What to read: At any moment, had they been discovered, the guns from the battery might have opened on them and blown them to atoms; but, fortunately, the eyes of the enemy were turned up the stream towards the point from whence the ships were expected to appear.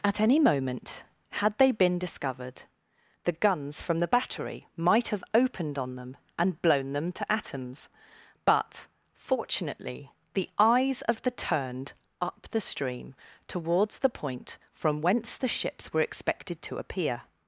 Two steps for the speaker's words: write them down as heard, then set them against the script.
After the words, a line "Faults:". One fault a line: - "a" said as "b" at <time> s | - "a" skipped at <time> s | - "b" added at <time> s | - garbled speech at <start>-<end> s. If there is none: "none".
At any moment, had they been discovered, the guns from the battery might have opened on them and blown them to atoms; but, fortunately, the eyes of the turned up the stream towards the point from whence the ships were expected to appear.
Faults:
- "enemy were" skipped at 11.3 s